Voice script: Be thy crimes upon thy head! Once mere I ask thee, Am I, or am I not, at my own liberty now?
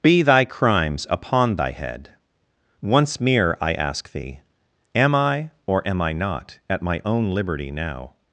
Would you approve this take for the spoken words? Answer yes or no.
yes